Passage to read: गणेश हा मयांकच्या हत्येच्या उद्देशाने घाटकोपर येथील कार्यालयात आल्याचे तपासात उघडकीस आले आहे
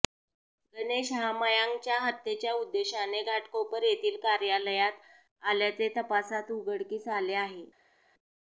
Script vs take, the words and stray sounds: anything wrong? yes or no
no